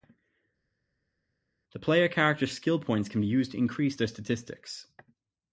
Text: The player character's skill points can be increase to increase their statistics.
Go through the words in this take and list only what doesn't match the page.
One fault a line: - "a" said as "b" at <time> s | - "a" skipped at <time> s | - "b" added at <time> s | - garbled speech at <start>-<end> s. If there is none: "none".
- "increase" said as "used" at 3.3 s